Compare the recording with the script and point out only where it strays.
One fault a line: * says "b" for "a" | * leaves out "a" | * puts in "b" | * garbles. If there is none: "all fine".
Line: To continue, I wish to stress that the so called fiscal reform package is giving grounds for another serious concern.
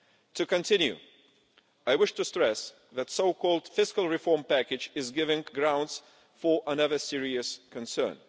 all fine